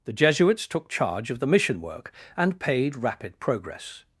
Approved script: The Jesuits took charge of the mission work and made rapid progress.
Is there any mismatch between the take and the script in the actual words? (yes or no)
yes